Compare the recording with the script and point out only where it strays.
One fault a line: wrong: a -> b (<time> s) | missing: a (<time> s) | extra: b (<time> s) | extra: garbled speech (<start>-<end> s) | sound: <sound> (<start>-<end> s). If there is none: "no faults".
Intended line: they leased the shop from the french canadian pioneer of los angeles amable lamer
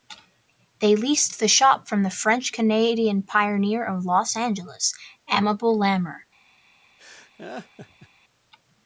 sound: laugh (7.0-8.1 s)